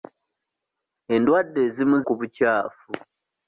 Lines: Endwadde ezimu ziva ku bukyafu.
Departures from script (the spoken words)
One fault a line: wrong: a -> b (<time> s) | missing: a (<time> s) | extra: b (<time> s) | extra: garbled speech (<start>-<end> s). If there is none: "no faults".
missing: ziva (2.0 s)